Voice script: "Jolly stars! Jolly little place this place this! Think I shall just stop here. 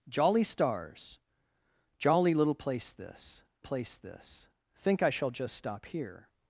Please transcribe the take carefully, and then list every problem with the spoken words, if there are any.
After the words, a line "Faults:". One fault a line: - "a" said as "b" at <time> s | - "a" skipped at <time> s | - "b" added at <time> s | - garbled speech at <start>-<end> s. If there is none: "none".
"Jolly stars! Jolly little place this place this! Think I shall just stop here.
Faults:
none